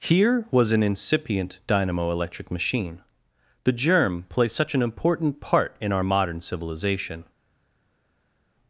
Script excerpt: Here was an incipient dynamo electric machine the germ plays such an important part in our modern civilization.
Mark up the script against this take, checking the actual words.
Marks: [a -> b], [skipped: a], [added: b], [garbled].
Here was an incipient dynamo electric machine the germ plays such an important part in our modern civilization.